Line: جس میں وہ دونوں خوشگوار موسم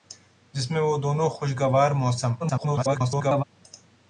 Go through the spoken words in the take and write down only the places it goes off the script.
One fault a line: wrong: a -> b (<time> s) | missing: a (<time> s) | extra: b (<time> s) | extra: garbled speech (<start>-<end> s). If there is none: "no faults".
extra: garbled speech (2.4-3.4 s)